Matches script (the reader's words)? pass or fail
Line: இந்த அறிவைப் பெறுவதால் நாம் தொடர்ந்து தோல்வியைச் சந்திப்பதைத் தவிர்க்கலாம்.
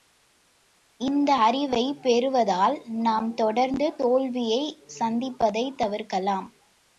pass